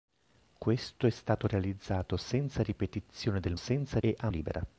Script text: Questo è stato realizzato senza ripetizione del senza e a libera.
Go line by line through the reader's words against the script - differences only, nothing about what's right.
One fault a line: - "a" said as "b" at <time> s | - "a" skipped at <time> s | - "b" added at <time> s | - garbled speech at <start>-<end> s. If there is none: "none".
none